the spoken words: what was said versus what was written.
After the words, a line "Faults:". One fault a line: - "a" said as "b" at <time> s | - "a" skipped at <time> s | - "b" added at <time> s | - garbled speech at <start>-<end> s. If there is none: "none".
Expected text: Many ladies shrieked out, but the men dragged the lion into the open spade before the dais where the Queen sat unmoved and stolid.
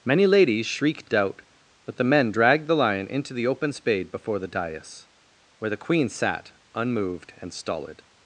Many ladies shrieked out, but the men dragged the lion into the open spade before the dais where the Queen sat unmoved and stolid.
Faults:
none